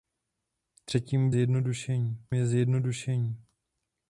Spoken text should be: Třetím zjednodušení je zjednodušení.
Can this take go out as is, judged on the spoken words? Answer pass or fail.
pass